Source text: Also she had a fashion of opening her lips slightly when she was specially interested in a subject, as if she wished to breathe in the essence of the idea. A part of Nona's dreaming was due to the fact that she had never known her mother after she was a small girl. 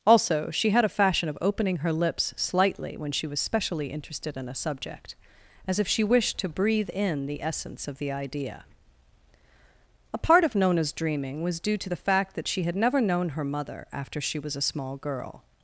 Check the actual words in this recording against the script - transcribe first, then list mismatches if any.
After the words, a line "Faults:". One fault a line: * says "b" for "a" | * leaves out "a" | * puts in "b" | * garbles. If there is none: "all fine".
Also she had a fashion of opening her lips slightly when she was specially interested in a subject, as if she wished to breathe in the essence of the idea. A part of Nona's dreaming was due to the fact that she had never known her mother after she was a small girl.
Faults:
all fine